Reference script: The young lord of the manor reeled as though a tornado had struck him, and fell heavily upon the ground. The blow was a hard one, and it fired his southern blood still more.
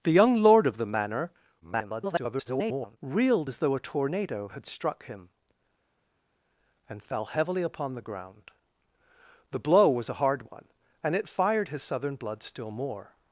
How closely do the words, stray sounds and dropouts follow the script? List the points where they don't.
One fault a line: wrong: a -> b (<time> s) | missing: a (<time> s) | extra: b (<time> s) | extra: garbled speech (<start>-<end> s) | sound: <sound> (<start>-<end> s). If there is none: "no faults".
extra: garbled speech (1.6-3.0 s)